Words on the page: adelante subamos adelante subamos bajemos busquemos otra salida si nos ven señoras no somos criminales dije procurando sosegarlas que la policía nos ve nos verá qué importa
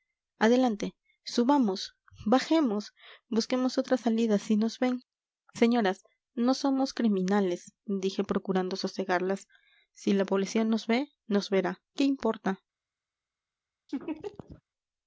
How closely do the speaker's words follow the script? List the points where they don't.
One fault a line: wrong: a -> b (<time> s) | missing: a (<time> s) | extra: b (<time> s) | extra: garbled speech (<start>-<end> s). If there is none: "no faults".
missing: adelante subamos (1.9 s)
wrong: que -> si (9.9 s)